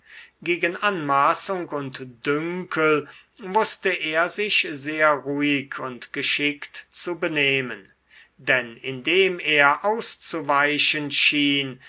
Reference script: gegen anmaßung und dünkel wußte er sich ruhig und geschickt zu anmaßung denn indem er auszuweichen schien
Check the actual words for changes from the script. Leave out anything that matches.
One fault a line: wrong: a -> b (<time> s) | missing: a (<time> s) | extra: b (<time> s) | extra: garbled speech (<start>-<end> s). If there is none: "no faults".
extra: sehr (4.7 s)
wrong: anmaßung -> benehmen (7.2 s)